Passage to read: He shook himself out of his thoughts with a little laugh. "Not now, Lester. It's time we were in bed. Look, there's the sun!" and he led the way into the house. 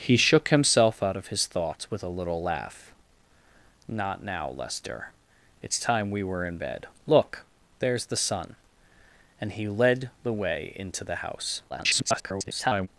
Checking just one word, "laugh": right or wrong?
right